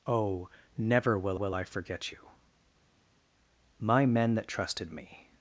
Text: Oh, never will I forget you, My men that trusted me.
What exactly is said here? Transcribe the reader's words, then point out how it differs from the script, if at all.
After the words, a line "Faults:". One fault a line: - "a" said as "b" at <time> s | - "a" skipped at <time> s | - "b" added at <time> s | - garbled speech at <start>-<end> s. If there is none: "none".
Oh, never will will I forget you, My men that trusted me.
Faults:
- "will" added at 1.3 s